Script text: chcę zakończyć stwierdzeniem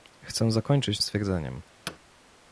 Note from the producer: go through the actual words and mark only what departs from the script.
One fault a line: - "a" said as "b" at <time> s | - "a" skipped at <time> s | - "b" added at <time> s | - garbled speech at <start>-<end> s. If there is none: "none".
none